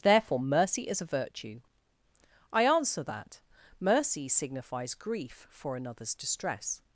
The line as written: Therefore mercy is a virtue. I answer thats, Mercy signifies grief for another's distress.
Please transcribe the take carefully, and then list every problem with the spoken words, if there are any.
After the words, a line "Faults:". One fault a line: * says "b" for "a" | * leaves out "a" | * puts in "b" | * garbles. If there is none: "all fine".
Therefore mercy is a virtue. I answer that, Mercy signifies grief for another's distress.
Faults:
* says "that" for "thats"